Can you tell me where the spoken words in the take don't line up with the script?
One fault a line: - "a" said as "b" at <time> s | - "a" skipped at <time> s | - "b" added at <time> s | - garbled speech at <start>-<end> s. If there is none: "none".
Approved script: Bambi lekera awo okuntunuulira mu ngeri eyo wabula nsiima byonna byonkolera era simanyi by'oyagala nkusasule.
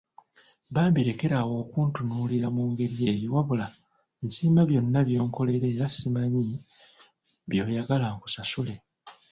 none